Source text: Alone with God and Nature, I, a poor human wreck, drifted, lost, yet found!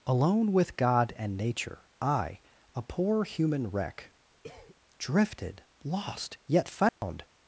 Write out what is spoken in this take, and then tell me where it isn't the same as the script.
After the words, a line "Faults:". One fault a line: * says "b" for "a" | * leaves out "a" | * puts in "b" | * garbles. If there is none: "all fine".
Alone with God and Nature, I, a poor human wreck, drifted, lost, yet found!
Faults:
all fine